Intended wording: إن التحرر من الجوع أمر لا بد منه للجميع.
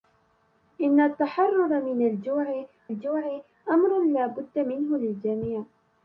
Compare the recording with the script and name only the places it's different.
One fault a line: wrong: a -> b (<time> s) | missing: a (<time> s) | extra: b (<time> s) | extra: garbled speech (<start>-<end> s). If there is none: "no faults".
extra: الجوع (2.9 s)